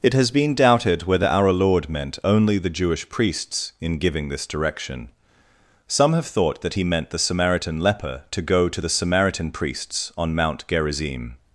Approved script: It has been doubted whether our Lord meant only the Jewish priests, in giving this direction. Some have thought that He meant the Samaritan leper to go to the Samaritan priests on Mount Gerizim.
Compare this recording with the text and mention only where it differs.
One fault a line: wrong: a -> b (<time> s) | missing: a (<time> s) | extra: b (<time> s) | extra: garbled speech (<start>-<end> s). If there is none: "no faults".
no faults